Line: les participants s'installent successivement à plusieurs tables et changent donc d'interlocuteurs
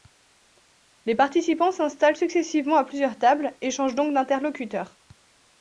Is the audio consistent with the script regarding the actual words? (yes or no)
yes